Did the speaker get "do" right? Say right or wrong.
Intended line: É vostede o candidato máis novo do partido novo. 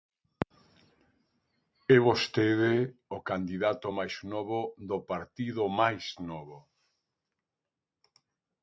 right